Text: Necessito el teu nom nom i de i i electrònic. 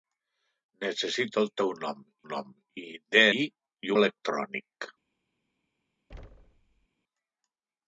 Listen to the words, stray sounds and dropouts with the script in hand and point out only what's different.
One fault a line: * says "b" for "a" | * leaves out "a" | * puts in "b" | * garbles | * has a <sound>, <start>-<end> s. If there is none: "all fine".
* has a thud, 6.1-6.9 s